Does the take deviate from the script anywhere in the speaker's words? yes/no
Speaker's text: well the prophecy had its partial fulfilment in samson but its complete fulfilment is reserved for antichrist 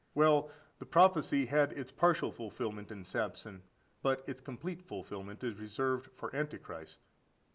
no